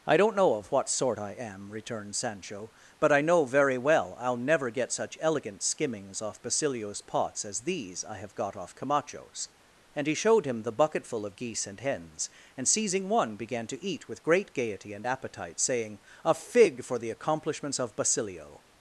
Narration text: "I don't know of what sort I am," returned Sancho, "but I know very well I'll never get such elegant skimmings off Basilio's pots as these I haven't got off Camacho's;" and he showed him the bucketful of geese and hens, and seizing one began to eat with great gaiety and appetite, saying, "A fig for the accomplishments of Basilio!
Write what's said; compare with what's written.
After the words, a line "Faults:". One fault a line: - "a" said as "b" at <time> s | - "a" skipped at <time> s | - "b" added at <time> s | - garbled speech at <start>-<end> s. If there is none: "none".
"I don't know of what sort I am," returned Sancho, "but I know very well I'll never get such elegant skimmings off Basilio's pots as these I have got off Camacho's;" and he showed him the bucketful of geese and hens, and seizing one began to eat with great gaiety and appetite, saying, "A fig for the accomplishments of Basilio!
Faults:
- "haven't" said as "have" at 8.2 s